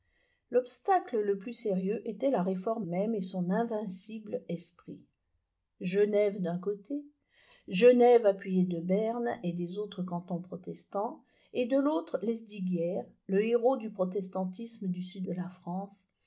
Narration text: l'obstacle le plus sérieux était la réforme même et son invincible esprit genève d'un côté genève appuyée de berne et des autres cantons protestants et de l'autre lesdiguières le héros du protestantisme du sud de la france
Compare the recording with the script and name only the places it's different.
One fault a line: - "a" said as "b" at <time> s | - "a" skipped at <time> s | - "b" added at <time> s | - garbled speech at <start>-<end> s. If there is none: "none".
none